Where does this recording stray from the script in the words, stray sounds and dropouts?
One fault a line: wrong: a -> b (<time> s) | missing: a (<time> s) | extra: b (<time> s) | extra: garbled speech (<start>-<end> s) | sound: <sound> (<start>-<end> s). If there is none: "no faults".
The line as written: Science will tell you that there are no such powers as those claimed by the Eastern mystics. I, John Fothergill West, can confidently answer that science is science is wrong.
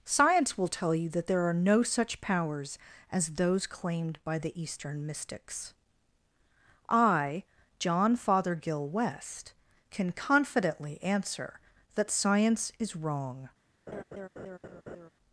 missing: science is (12.9 s)
sound: laugh (13.9-15.1 s)